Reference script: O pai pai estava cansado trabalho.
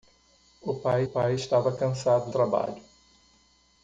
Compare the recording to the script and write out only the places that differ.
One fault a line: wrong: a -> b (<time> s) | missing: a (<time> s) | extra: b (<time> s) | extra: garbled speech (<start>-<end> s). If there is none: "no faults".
no faults